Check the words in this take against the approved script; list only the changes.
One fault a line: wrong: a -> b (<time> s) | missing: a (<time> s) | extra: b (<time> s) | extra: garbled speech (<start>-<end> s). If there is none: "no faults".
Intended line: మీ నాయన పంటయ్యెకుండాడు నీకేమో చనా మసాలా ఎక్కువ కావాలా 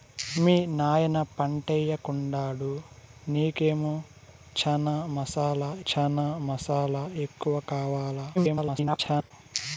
extra: చనా మసాలా (5.9 s)
extra: garbled speech (8.3-9.3 s)